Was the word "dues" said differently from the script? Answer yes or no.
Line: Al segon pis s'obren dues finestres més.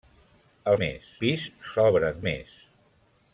yes